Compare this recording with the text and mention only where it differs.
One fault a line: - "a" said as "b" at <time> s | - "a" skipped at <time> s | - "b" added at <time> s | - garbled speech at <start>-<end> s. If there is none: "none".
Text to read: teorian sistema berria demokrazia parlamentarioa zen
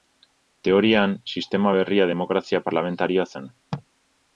none